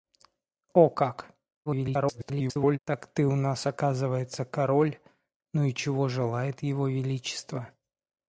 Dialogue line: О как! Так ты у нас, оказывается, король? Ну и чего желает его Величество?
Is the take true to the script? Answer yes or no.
no